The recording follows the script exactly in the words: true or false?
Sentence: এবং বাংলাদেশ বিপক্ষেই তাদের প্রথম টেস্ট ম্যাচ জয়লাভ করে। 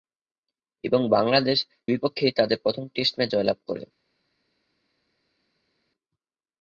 true